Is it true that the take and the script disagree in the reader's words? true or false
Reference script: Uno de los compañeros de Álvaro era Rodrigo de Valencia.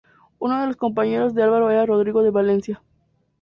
false